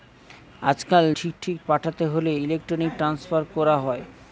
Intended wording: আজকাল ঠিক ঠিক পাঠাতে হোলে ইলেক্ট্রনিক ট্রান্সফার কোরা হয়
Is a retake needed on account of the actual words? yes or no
no